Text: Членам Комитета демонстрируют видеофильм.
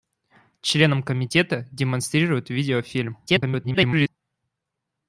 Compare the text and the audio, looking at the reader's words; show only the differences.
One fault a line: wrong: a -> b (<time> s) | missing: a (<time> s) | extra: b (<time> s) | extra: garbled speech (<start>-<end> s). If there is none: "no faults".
extra: garbled speech (3.3-4.1 s)